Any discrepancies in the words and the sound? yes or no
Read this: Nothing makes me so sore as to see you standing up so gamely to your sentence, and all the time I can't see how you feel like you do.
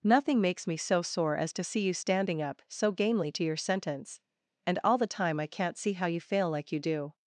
yes